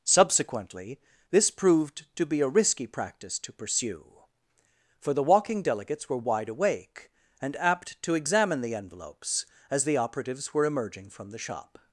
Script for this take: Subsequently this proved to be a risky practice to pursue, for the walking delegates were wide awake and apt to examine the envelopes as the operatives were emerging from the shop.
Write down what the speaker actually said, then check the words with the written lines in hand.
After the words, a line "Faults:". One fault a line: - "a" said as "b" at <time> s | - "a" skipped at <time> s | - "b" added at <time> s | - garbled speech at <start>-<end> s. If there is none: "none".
Subsequently this proved to be a risky practice to pursue, for the walking delegates were wide awake and apt to examine the envelopes as the operatives were emerging from the shop.
Faults:
none